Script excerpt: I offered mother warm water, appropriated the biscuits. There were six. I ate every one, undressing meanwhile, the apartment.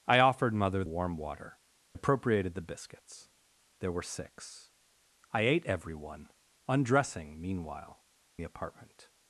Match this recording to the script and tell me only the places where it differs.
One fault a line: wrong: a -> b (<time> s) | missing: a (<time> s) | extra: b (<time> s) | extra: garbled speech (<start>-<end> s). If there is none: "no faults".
no faults